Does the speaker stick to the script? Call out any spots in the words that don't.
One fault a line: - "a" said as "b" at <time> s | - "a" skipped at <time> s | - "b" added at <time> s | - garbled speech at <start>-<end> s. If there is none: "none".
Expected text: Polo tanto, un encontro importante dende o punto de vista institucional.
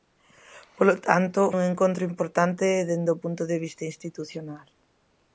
none